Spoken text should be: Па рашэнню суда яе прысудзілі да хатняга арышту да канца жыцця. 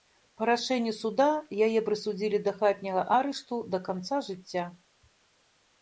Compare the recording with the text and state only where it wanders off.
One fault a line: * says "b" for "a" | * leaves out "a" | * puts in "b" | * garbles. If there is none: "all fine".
all fine